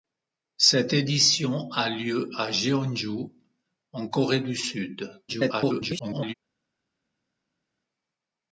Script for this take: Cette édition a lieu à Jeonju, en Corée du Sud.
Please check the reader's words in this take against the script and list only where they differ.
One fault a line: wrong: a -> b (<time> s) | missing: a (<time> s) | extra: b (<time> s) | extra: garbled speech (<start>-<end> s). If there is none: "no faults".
extra: garbled speech (5.3-6.3 s)